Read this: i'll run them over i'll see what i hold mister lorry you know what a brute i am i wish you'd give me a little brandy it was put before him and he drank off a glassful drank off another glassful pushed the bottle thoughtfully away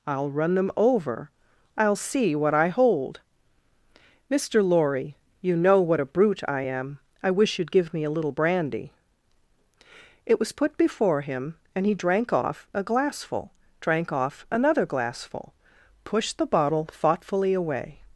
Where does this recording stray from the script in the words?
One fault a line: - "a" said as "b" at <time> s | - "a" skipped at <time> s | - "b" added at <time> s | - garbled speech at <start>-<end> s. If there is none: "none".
none